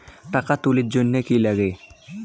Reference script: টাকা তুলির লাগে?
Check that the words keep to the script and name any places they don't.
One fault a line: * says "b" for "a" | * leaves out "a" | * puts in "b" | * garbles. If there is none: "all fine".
* puts in "জন্যে কি"